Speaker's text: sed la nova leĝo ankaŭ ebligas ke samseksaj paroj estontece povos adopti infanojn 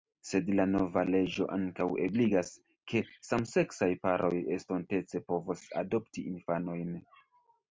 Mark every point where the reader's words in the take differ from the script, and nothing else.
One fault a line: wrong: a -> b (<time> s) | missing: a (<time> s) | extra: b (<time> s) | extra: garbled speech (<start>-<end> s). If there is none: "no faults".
no faults